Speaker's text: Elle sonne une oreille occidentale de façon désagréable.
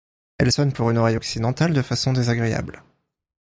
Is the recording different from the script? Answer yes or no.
yes